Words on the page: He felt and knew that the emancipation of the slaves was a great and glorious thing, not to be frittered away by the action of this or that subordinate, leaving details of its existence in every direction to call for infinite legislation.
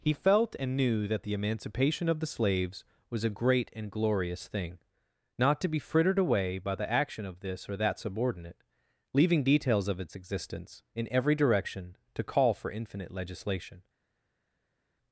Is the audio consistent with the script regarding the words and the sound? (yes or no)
yes